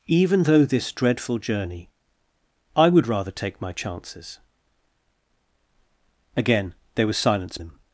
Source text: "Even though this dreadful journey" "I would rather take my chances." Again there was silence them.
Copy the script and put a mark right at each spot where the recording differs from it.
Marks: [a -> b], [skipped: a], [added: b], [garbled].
"Even though this dreadful journey" "I would rather take my chances." Again there was silence them.